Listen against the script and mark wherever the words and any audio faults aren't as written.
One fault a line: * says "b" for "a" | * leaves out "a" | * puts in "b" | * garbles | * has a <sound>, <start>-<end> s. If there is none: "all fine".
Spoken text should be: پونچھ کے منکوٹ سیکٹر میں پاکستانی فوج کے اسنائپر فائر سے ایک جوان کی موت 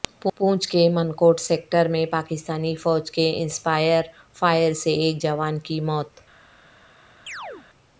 * has a chirp, 7.3-7.7 s